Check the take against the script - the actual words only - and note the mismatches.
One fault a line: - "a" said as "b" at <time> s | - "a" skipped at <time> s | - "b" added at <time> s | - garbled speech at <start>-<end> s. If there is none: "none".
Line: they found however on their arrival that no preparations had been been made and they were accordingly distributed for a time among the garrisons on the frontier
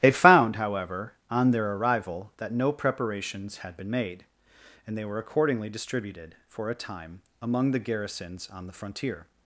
- "been" skipped at 3.9 s